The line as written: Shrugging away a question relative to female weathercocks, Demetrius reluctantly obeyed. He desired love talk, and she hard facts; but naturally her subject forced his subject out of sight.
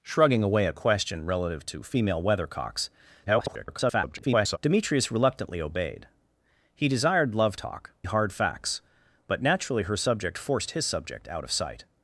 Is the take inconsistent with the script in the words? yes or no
yes